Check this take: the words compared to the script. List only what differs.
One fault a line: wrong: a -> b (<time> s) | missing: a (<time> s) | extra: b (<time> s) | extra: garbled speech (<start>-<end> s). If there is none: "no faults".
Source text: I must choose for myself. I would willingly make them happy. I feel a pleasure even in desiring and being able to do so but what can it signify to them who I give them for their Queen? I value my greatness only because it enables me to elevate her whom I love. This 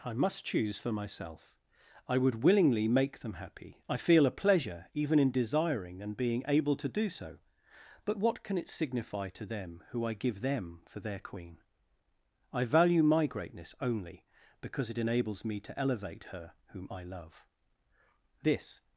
no faults